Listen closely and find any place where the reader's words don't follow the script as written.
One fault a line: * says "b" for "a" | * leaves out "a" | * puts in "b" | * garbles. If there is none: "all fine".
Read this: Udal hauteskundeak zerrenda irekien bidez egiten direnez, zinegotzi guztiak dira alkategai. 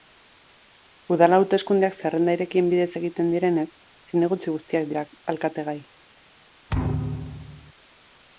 all fine